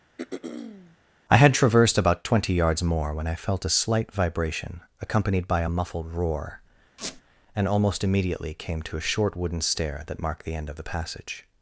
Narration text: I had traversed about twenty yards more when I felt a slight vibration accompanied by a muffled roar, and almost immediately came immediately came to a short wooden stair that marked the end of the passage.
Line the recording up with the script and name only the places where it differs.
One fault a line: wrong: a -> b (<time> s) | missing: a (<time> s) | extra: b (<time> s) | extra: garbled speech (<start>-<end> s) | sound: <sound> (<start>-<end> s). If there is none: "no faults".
sound: throat clearing (0.2-1.0 s)
sound: squeak (7.0-7.2 s)
missing: immediately came (8.8 s)